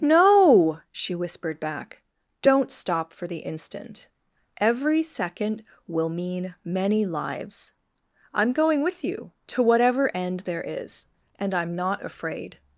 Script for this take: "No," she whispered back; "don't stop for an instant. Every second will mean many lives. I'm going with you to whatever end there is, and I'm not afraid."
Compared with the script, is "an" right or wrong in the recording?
wrong